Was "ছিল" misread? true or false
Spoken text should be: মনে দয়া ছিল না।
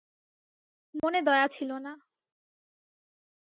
false